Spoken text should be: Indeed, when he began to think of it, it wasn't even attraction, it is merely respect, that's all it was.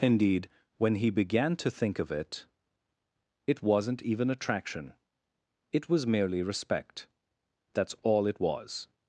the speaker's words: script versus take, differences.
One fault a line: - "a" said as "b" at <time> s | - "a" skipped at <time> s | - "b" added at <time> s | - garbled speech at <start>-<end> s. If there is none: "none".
- "is" said as "was" at 5.9 s